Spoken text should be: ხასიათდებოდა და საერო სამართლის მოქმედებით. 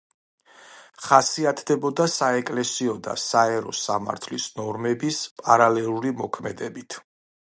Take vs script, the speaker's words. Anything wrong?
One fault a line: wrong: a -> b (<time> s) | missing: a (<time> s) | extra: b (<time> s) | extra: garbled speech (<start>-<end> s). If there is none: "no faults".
extra: საეკლესიო (2.1 s)
extra: ნორმების პარალელური (4.6 s)